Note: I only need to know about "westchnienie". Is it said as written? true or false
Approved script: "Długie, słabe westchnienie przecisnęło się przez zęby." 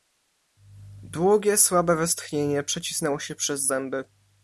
true